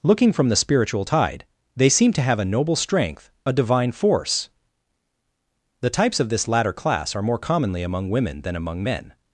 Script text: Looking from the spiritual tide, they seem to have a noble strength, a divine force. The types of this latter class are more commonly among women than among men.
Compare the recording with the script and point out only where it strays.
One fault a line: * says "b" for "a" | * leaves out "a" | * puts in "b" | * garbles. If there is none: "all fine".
all fine